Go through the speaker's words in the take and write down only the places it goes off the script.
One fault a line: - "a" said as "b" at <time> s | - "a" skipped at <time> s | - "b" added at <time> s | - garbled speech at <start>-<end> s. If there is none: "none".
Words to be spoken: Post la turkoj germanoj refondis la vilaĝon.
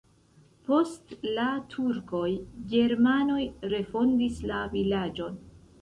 none